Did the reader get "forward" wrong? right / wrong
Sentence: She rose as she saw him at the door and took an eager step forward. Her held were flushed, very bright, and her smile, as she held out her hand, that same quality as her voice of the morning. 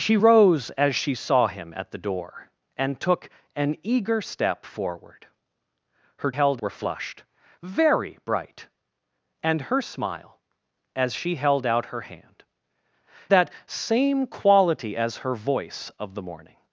right